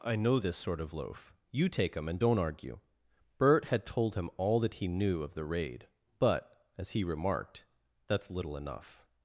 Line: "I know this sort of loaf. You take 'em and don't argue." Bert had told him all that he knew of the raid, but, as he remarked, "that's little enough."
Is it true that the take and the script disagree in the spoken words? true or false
false